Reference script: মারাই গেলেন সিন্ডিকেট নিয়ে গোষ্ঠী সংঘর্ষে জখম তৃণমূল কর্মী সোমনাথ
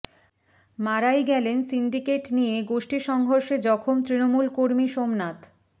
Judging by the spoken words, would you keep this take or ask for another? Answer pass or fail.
pass